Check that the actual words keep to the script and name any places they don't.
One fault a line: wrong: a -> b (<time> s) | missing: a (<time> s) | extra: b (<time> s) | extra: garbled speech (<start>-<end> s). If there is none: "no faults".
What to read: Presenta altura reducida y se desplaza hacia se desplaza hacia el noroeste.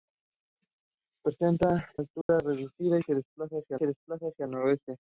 no faults